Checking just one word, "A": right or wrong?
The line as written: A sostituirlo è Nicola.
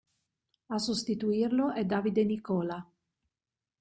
right